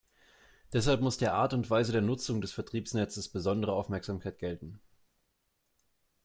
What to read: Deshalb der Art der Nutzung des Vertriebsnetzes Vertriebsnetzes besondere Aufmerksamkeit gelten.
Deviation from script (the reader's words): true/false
true